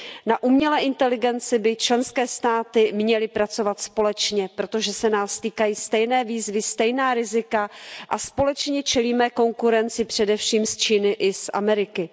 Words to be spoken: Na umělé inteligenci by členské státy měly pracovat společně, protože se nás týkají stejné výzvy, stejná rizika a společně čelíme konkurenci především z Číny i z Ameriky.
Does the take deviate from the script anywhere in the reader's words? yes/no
no